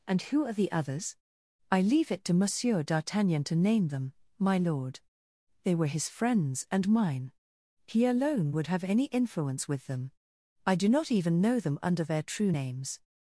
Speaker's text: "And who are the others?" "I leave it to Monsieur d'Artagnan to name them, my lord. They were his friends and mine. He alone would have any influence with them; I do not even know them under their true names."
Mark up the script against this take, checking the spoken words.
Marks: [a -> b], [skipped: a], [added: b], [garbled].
"And who are the others?" "I leave it to Monsieur d'Artagnan to name them, my lord. They were his friends and mine. He alone would have any influence with them; I do not even know them under their true names."